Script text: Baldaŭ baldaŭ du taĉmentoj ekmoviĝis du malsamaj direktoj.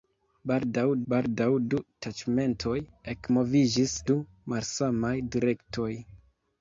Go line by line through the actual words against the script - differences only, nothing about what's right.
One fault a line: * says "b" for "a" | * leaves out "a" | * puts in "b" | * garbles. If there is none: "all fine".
all fine